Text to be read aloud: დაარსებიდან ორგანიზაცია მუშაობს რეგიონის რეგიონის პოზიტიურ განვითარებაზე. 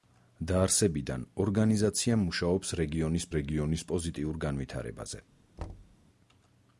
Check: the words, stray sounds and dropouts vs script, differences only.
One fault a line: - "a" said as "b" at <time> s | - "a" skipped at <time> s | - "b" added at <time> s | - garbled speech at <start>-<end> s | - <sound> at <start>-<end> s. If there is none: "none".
- thud at 5.6-6.0 s